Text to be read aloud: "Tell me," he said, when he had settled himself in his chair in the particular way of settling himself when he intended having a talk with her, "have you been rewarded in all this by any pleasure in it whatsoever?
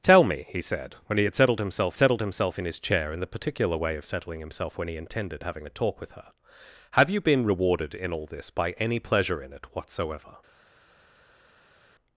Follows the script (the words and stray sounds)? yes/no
no